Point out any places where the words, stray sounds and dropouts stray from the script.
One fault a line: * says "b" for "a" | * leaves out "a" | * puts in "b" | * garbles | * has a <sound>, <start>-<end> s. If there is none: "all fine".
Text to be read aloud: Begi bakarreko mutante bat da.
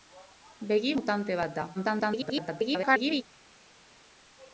* leaves out "bakarreko"
* garbles